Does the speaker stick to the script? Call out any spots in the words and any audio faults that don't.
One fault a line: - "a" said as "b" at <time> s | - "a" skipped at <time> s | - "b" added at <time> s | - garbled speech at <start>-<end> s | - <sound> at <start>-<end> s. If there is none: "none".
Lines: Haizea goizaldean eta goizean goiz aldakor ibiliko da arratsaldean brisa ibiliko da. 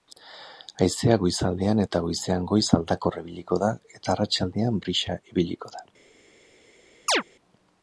- "eta" added at 4.0 s
- chirp at 7.1-7.2 s